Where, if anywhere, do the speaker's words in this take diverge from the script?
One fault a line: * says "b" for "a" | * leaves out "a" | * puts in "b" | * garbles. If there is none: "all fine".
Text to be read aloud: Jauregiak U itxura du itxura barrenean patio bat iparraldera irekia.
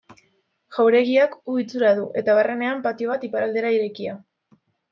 * says "eta" for "itxura"